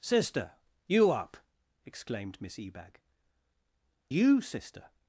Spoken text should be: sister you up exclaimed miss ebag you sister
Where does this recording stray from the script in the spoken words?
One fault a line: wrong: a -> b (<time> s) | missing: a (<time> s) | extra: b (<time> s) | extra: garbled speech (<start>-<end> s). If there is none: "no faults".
no faults